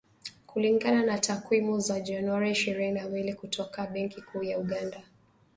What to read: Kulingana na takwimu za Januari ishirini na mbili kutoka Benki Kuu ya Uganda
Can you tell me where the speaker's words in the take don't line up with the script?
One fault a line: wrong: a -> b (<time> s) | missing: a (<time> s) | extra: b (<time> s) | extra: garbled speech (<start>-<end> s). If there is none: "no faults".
no faults